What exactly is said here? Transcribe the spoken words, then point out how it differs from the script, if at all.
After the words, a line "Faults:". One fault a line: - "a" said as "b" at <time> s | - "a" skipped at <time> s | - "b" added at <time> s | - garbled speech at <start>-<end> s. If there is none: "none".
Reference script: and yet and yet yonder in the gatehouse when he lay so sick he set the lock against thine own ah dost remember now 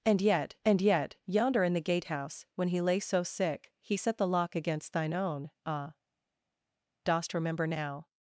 and yet and yet yonder in the gatehouse when he lay so sick he set the lock against thine own ah dost remember now
Faults:
none